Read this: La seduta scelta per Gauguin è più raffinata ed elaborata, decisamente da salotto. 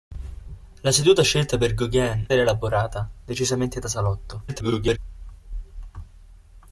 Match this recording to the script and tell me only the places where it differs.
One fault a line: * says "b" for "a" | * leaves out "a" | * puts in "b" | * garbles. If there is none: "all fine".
* leaves out "è più raffinata"
* garbles